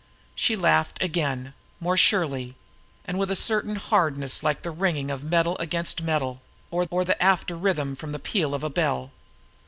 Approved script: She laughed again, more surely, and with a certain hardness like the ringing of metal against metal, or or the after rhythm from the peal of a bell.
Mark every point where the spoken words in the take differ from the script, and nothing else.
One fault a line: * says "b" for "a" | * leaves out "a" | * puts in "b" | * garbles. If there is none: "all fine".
all fine